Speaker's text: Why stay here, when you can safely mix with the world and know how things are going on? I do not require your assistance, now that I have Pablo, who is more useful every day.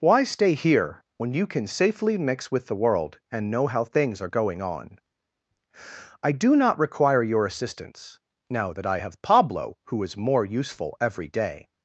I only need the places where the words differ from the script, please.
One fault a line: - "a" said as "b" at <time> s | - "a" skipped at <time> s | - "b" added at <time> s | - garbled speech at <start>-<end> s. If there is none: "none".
none